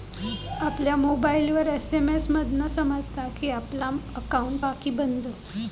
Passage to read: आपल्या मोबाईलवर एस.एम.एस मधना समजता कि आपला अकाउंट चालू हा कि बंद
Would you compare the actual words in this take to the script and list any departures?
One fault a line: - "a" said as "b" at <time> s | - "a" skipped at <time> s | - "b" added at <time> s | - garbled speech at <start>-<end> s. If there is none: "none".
- "चालू" skipped at 4.6 s